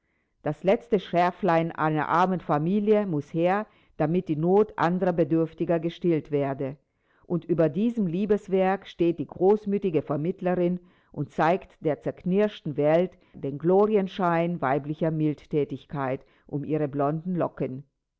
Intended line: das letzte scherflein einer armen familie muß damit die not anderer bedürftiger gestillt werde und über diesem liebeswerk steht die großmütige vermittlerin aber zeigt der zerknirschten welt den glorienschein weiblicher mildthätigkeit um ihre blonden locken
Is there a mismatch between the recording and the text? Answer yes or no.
yes